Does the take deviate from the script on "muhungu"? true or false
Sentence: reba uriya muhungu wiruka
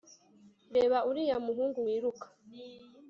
false